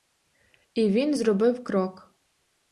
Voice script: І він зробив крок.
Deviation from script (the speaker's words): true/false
false